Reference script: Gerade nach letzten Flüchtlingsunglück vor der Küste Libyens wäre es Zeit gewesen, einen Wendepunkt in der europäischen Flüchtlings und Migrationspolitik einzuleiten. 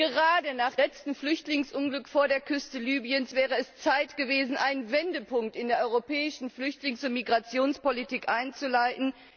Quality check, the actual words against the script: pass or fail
pass